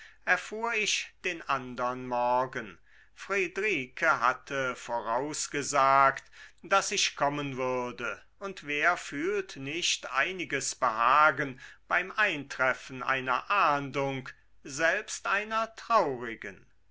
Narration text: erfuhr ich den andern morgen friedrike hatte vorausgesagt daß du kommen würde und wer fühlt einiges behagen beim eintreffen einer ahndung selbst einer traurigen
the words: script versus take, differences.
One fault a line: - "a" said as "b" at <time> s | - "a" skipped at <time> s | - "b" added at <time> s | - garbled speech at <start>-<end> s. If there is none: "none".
- "du" said as "ich" at 6.9 s
- "nicht" added at 9.6 s